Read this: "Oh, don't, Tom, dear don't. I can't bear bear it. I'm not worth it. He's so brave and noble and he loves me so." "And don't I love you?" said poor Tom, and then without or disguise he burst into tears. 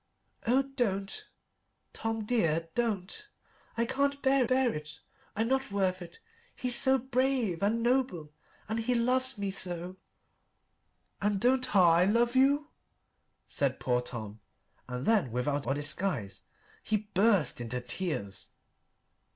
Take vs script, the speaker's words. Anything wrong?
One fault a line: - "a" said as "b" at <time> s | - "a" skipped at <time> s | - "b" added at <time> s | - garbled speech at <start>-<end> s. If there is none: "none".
none